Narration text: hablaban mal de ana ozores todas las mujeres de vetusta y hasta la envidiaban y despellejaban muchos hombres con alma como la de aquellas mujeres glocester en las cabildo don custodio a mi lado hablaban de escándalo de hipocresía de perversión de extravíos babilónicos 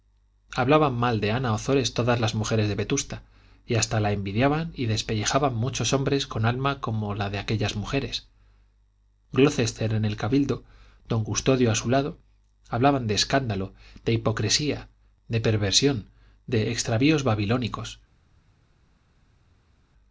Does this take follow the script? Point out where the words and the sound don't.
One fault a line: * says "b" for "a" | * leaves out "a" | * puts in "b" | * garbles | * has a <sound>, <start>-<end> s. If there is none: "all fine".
* says "el" for "las"
* says "su" for "mi"